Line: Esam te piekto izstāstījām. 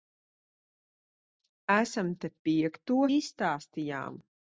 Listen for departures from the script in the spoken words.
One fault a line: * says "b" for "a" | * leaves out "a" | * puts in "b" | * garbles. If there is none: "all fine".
all fine